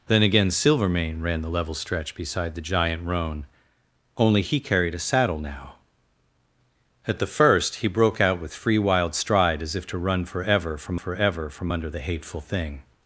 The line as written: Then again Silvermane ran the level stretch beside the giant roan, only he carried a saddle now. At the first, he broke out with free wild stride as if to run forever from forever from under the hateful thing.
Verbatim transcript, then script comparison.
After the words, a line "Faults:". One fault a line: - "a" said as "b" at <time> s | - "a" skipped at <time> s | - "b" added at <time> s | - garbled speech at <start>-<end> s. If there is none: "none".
Then again Silvermane ran the level stretch beside the giant roan, only he carried a saddle now. At the first, he broke out with free wild stride as if to run forever from forever from under the hateful thing.
Faults:
none